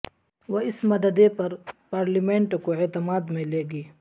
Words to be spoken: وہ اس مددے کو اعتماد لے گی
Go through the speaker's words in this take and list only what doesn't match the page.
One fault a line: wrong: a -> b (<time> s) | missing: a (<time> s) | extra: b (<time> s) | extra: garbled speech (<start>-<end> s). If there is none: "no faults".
extra: پر پارلیمنٹ (1.3 s)
extra: میں (3.3 s)